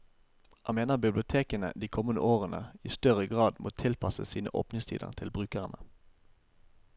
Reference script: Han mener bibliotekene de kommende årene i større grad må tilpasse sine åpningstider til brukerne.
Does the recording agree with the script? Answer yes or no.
yes